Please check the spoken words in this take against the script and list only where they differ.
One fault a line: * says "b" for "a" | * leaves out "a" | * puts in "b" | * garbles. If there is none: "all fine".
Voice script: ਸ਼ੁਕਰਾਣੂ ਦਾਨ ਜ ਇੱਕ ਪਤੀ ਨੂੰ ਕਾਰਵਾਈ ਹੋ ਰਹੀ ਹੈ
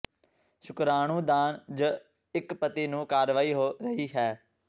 all fine